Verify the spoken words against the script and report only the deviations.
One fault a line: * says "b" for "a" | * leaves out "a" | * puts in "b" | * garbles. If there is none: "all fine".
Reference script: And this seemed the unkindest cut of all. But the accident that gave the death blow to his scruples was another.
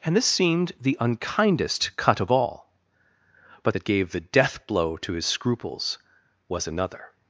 * leaves out "the accident"